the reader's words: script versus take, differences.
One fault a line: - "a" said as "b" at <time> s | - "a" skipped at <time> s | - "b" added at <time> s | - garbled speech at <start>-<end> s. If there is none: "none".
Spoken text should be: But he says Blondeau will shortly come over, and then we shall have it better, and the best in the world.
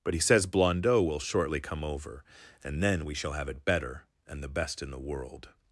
none